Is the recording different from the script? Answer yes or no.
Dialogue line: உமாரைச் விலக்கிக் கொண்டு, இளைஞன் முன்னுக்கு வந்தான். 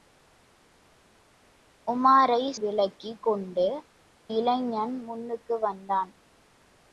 no